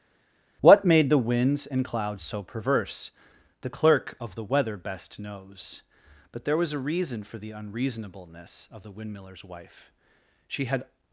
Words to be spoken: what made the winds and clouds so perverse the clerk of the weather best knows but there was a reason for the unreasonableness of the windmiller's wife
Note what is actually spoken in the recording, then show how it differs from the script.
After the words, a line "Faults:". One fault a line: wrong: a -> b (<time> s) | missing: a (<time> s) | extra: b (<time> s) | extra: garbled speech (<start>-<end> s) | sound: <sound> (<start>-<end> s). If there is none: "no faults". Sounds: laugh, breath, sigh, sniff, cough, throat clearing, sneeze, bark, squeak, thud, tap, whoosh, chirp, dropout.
what made the winds and clouds so perverse the clerk of the weather best knows but there was a reason for the unreasonableness of the windmiller's wife she had
Faults:
extra: she had (10.5 s)